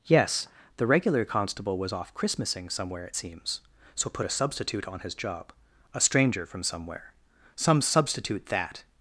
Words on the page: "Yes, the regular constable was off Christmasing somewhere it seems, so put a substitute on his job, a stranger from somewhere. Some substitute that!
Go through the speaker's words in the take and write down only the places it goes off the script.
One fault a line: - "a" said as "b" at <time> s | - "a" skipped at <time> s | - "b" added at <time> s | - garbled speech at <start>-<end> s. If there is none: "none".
none